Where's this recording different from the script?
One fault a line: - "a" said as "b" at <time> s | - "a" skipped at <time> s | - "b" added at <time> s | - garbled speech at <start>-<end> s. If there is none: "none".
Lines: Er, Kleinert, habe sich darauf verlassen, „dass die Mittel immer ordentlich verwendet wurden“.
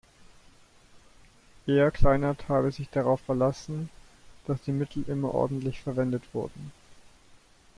none